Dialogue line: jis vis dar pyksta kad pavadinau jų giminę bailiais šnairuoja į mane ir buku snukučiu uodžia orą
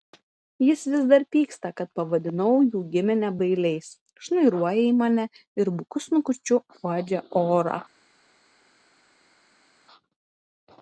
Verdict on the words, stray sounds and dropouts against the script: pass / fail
pass